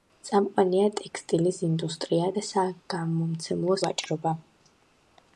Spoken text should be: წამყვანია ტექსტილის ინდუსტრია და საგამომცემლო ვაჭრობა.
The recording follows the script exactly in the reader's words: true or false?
true